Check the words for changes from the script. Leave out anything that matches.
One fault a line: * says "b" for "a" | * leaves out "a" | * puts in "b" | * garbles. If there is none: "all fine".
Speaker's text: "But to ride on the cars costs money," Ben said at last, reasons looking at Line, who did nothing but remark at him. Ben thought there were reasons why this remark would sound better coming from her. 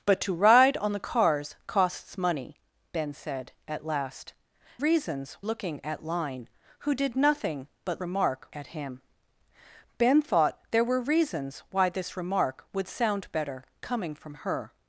all fine